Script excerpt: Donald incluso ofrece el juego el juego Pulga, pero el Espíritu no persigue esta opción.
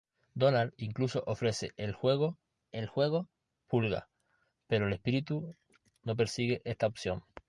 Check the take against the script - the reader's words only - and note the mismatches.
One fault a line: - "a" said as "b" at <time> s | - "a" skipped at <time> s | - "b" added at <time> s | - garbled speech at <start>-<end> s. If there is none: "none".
none